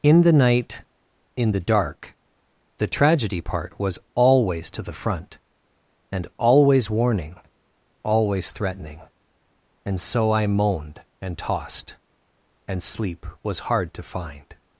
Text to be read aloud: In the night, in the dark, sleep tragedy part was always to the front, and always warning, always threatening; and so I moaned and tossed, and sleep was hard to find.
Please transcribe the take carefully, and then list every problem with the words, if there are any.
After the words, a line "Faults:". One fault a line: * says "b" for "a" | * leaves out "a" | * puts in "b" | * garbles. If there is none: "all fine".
In the night, in the dark, the tragedy part was always to the front, and always warning, always threatening; and so I moaned and tossed, and sleep was hard to find.
Faults:
* says "the" for "sleep"